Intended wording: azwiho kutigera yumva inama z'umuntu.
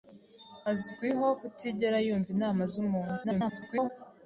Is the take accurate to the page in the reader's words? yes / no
no